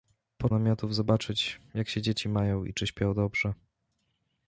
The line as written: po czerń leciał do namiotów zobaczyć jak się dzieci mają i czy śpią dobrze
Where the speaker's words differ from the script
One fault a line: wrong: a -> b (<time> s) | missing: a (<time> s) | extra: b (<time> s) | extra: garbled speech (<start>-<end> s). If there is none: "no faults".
missing: czerń leciał do (0.5 s)